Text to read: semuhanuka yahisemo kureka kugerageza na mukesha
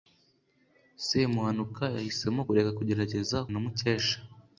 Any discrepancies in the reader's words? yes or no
no